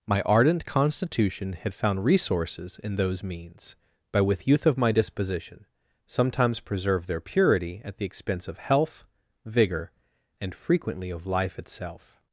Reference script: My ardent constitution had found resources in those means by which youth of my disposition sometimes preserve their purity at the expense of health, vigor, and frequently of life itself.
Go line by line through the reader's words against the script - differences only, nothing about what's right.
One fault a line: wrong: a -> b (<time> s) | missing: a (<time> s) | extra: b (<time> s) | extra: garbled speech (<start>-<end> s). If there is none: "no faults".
wrong: which -> with (4.2 s)